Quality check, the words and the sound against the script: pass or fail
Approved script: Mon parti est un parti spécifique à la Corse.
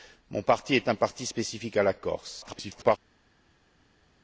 fail